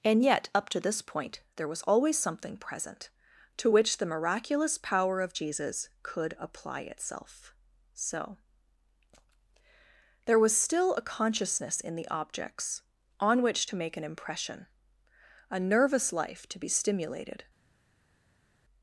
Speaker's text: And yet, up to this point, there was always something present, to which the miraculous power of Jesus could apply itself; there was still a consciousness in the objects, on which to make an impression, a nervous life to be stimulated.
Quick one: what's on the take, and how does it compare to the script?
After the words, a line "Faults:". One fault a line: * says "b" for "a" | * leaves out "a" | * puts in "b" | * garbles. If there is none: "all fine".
And yet, up to this point, there was always something present, to which the miraculous power of Jesus could apply itself; so there was still a consciousness in the objects, on which to make an impression, a nervous life to be stimulated.
Faults:
* puts in "so"